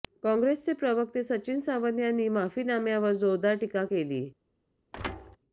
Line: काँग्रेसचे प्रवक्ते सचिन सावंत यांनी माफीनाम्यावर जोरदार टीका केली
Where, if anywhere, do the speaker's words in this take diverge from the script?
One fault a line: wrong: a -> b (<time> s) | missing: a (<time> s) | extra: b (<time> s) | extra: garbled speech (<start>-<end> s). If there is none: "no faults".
no faults